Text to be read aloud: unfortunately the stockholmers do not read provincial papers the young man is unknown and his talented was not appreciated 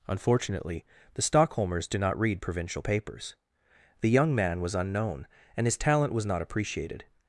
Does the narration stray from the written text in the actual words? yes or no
yes